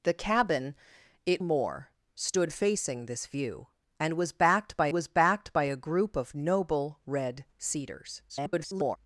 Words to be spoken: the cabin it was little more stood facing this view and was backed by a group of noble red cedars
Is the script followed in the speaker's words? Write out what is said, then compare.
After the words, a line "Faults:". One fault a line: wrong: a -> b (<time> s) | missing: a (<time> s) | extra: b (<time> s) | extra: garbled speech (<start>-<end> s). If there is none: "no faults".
the cabin it more stood facing this view and was backed by was backed by a group of noble red cedars [garbled]
Faults:
missing: was little (1.4 s)
extra: was backed by (4.9 s)
extra: garbled speech (8.3-9.0 s)